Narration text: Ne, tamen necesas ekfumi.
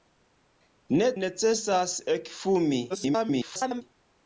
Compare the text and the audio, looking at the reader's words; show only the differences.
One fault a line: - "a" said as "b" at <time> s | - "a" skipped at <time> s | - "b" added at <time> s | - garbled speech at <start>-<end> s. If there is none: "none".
- "tamen" skipped at 1.1 s
- garbled speech at 2.9-3.8 s